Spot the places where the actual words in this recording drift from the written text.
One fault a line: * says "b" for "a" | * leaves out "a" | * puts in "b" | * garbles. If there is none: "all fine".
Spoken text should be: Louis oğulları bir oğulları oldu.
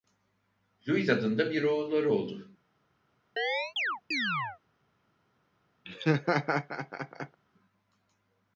* says "adında" for "oğulları"